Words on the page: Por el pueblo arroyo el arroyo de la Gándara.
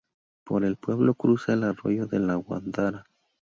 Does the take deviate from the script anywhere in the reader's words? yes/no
yes